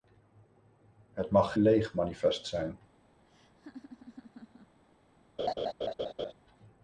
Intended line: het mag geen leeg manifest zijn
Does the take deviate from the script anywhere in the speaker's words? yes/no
yes